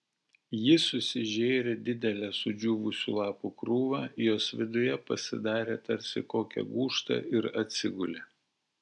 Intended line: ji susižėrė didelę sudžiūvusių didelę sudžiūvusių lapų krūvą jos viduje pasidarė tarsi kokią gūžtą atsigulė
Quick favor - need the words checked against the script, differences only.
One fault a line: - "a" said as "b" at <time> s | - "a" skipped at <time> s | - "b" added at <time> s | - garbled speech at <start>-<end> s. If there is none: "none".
- "didelę sudžiūvusių" skipped at 3.1 s
- "ir" added at 7.4 s